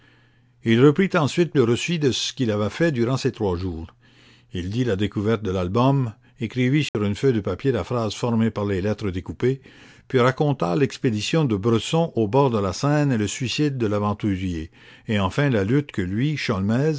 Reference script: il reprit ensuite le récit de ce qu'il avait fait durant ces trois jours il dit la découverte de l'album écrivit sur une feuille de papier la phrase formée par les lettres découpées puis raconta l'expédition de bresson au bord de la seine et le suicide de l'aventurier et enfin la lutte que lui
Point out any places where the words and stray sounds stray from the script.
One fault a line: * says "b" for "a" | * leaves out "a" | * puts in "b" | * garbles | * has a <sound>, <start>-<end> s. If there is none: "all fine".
* has a dropout, 6.9-6.9 s